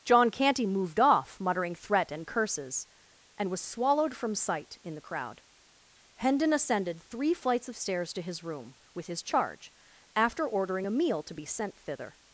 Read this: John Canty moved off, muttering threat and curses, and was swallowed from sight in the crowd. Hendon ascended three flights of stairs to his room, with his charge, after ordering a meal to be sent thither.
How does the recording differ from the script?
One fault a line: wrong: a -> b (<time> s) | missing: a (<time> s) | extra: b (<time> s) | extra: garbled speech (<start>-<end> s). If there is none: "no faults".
no faults